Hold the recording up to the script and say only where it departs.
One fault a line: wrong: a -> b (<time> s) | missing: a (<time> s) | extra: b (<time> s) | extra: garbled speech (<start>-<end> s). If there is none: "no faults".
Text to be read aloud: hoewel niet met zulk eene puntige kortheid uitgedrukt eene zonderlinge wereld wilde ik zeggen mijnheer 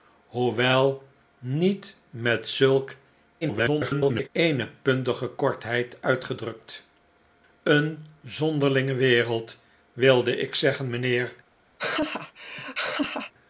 extra: garbled speech (3.4-4.3 s)